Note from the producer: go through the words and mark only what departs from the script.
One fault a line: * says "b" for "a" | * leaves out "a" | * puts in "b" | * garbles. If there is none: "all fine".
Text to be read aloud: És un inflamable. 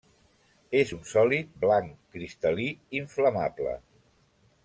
* puts in "sòlid blanc cristal·lí"